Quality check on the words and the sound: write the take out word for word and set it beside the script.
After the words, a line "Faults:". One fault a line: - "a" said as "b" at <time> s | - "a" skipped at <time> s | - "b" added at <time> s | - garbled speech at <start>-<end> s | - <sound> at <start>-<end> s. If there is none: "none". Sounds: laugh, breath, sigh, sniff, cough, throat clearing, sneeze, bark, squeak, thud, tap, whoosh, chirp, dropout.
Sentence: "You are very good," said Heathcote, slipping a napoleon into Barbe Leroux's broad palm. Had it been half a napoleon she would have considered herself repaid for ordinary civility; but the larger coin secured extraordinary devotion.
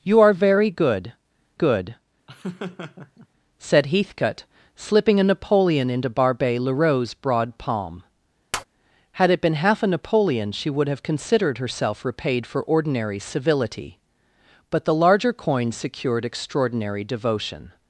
"You are very good good," said Heathcote, slipping a napoleon into Barbe Leroux's broad palm. Had it been half a napoleon she would have considered herself repaid for ordinary civility; but the larger coin secured extraordinary devotion.
Faults:
- "good" added at 1.5 s
- laugh at 2.3-3.3 s
- tap at 8.5-8.6 s